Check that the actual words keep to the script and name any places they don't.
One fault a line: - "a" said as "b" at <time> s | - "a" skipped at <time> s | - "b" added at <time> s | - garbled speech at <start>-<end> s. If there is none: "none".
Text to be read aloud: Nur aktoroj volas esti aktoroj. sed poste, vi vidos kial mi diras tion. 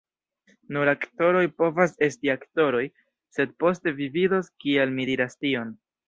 - "volas" said as "povas" at 1.6 s